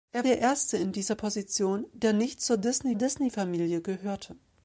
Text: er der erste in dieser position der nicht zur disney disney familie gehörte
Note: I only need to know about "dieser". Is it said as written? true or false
true